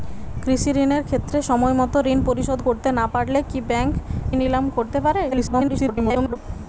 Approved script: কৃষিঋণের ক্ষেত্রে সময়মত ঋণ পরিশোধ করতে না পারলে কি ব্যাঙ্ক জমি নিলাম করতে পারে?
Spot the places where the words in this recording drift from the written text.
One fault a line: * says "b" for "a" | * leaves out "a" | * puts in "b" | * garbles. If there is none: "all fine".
* leaves out "জমি"
* garbles